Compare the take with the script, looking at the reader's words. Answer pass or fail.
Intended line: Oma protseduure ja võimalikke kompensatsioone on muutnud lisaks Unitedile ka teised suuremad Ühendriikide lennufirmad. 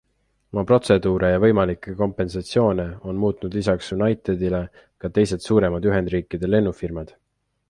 pass